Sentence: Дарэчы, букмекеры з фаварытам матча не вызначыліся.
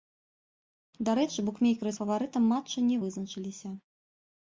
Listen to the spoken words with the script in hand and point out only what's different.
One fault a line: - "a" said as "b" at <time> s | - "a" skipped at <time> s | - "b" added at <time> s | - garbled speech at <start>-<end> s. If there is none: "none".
none